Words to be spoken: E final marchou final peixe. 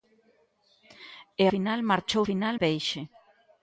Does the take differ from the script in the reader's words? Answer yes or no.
no